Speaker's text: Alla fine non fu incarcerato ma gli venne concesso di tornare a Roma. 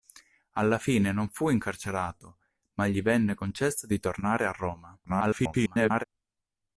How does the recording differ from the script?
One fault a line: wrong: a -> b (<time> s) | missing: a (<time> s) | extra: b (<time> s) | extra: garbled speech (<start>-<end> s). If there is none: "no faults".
extra: garbled speech (5.1-6.0 s)